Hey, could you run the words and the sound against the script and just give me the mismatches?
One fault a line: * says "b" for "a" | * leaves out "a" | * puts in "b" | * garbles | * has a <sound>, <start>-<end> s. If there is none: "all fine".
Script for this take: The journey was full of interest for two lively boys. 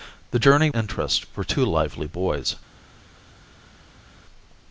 * leaves out "was full of"